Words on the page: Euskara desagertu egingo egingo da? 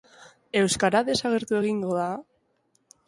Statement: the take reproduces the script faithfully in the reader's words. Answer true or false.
false